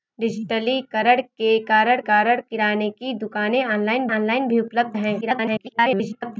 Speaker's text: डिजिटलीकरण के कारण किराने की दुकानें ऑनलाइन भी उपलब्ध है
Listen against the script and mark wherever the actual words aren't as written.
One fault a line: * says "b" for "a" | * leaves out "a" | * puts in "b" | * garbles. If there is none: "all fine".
* puts in "कारण"
* puts in "ऑनलाइन"
* garbles